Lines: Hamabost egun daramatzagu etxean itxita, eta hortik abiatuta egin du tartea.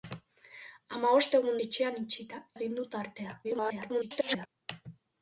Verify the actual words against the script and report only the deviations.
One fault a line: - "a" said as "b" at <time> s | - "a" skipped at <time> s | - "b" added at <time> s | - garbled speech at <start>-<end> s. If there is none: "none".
- "daramatzagu" skipped at 1.6 s
- "eta hortik abiatuta" skipped at 2.4 s
- garbled speech at 3.4-4.5 s